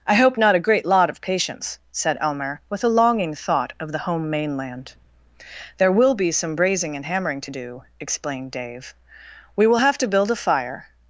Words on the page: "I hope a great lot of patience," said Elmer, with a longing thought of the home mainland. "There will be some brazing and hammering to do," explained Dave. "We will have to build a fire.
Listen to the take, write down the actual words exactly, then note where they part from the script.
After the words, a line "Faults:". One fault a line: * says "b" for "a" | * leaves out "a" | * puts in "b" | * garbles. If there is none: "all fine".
"I hope not a great lot of patience," said Elmer, with a longing thought of the home mainland. "There will be some brazing and hammering to do," explained Dave. "We will have to build a fire.
Faults:
* puts in "not"